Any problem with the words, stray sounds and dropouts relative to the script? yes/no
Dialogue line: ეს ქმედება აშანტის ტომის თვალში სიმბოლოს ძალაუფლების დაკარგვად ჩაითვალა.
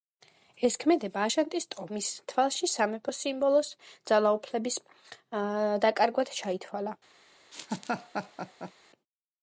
yes